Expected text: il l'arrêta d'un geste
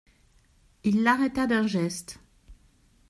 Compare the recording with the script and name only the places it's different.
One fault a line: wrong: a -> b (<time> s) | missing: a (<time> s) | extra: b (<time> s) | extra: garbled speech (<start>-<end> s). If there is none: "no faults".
no faults